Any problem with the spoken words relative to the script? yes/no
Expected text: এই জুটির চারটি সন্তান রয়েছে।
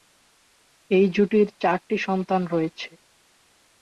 no